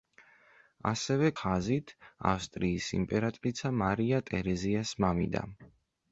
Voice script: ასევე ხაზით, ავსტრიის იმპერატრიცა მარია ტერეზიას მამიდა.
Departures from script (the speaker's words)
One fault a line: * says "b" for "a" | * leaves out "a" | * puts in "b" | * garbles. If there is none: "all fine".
all fine